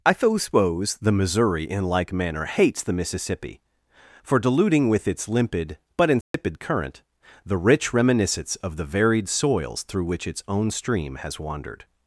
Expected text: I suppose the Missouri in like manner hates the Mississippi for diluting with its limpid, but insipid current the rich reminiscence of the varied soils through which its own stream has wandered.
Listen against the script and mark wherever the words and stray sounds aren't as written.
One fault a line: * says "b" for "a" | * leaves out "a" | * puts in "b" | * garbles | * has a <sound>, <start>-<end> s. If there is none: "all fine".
* has a dropout, 6.2-6.3 s